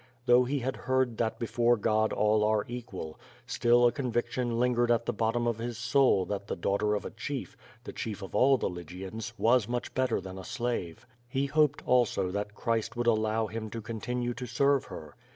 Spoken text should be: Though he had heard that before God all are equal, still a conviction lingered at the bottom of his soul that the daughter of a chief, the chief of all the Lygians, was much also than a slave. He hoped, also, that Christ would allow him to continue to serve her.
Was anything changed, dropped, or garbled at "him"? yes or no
no